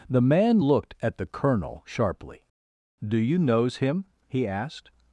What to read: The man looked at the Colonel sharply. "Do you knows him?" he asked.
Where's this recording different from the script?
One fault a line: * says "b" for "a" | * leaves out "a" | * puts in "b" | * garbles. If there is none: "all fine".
all fine